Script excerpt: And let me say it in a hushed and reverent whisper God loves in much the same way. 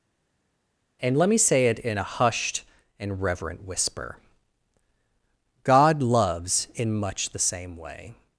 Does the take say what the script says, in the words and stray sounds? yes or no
yes